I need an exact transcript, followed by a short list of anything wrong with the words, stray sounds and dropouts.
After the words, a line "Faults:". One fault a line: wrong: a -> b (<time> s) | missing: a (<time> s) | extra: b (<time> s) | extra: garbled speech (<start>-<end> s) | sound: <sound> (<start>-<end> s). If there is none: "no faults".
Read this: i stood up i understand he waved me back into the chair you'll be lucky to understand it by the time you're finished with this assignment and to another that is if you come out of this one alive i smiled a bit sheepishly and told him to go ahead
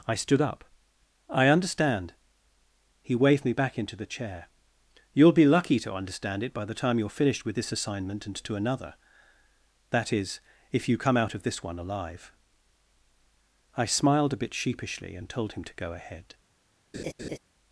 i stood up i understand he waved me back into the chair you'll be lucky to understand it by the time you're finished with this assignment and to another that is if you come out of this one alive i smiled a bit sheepishly and told him to go ahead
Faults:
sound: laugh (16.9-17.4 s)